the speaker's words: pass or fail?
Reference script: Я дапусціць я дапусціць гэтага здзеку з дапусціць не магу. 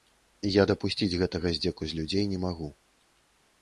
fail